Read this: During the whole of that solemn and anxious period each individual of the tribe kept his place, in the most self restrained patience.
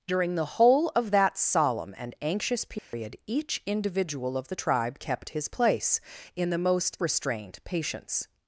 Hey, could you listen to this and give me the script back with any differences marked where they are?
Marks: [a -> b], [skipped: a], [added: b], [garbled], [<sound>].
During the whole of that solemn and anxious period [dropout] each individual of the tribe kept his place, in the most [skipped: self] restrained patience.